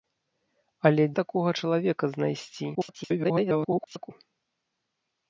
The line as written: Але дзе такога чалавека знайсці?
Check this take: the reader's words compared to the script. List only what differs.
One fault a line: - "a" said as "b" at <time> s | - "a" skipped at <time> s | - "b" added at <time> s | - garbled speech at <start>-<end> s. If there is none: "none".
- "дзе" skipped at 1.0 s
- garbled speech at 2.7-4.1 s